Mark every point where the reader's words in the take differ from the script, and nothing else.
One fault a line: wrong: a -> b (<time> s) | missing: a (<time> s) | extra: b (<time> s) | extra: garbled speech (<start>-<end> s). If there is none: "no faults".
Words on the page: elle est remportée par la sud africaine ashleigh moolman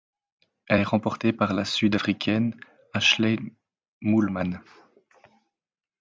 no faults